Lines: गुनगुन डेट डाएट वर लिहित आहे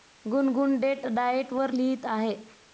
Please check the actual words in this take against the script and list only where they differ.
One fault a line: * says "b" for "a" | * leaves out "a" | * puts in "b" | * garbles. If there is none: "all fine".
all fine